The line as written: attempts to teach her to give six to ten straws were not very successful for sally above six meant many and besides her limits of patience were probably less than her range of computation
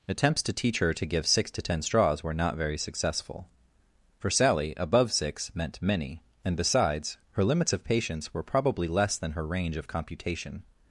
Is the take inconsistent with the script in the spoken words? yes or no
no